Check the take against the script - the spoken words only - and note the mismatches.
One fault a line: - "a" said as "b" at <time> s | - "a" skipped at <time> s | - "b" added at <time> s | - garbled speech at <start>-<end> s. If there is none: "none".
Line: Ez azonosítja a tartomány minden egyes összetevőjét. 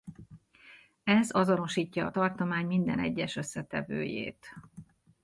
none